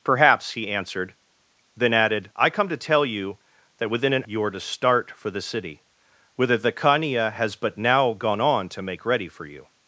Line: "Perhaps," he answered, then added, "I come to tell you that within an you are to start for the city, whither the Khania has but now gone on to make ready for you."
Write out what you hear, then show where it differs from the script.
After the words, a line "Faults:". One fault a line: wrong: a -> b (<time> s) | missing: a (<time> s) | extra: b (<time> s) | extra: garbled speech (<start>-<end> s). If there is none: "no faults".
"Perhaps," he answered, then added, "I come to tell you that within an you are to start for the city, whither the Khania has but now gone on to make ready for you."
Faults:
no faults